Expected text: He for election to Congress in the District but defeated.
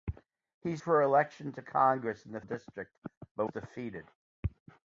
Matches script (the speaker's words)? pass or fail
pass